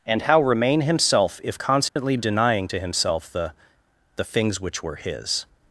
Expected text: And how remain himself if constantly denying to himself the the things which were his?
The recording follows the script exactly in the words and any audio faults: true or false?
false